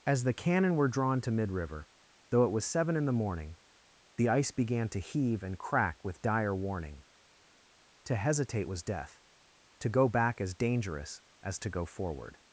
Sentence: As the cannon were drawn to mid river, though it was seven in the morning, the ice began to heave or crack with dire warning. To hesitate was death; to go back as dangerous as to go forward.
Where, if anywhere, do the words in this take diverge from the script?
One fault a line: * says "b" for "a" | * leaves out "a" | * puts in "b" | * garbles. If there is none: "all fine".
* says "and" for "or"